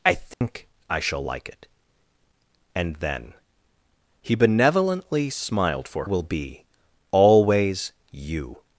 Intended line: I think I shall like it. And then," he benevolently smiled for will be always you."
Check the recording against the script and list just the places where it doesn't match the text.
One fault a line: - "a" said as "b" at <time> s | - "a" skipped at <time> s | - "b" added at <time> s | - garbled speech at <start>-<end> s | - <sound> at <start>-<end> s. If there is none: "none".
- dropout at 0.3-0.4 s